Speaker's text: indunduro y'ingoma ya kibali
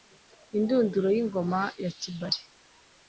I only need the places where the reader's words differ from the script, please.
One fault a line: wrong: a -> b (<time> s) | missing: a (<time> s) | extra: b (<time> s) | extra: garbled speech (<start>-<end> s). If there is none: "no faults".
no faults